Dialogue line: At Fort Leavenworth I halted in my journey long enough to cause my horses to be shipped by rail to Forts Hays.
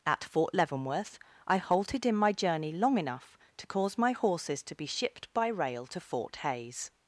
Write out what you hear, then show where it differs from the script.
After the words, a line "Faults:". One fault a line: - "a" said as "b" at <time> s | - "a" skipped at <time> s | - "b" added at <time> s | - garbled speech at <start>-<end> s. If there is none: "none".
At Fort Leavenworth I halted in my journey long enough to cause my horses to be shipped by rail to Fort Hays.
Faults:
- "Forts" said as "Fort" at 6.0 s